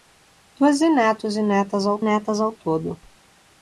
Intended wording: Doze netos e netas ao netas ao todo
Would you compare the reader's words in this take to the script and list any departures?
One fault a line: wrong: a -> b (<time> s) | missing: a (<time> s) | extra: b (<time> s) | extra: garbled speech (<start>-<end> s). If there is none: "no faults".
no faults